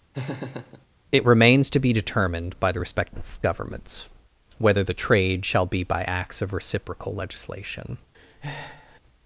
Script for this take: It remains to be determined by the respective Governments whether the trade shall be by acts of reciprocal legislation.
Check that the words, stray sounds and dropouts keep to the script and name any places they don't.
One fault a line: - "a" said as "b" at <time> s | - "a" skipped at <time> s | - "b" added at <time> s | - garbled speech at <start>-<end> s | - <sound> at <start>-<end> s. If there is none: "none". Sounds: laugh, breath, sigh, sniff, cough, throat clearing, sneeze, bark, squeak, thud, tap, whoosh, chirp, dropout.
- laugh at 0.1-0.9 s
- breath at 8.1-9.0 s